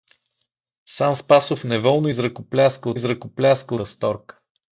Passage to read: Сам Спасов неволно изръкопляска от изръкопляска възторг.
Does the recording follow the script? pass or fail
pass